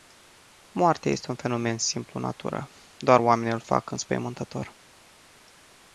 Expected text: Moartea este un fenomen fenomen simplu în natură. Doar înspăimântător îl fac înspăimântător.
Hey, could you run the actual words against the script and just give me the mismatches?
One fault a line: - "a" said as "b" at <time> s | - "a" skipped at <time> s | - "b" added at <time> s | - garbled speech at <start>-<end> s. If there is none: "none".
- "fenomen" skipped at 1.8 s
- "înspăimântător" said as "oamenii" at 3.2 s